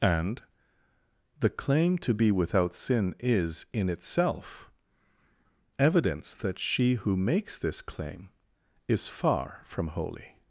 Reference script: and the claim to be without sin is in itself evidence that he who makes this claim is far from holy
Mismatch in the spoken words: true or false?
true